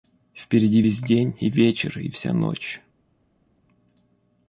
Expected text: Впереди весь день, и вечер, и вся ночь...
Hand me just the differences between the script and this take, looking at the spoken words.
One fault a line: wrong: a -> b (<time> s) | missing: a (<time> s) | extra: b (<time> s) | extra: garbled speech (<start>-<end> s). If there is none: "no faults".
no faults